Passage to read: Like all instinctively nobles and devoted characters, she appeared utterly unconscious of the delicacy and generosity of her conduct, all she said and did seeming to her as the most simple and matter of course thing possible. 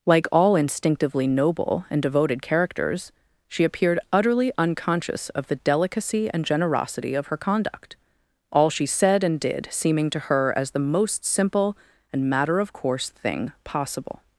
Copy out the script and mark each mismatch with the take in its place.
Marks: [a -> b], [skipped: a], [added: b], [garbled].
Like all instinctively [nobles -> noble] and devoted characters, she appeared utterly unconscious of the delicacy and generosity of her conduct, all she said and did seeming to her as the most simple and matter of course thing possible.